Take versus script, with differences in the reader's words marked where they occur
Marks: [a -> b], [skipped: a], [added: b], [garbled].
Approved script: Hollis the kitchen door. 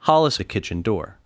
Hollis the kitchen door.